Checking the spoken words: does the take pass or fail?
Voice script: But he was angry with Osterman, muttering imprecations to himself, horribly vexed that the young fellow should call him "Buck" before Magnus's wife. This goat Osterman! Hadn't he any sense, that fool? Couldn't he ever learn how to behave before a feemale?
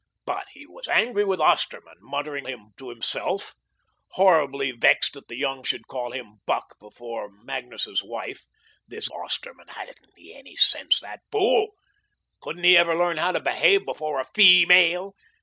fail